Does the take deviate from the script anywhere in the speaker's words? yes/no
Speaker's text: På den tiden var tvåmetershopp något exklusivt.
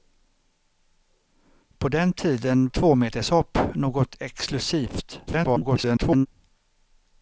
yes